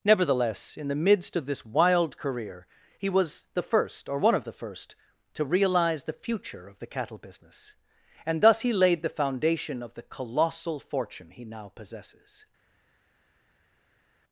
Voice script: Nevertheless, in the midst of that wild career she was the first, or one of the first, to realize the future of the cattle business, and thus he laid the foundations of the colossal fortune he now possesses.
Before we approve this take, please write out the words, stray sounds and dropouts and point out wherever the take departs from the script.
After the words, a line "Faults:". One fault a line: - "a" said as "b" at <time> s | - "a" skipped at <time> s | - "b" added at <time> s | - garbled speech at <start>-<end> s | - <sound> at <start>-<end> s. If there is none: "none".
Nevertheless, in the midst of this wild career he was the first, or one of the first, to realize the future of the cattle business, and thus he laid the foundation of the colossal fortune he now possesses.
Faults:
- "that" said as "this" at 1.4 s
- "she" said as "he" at 3.0 s
- "foundations" said as "foundation" at 9.1 s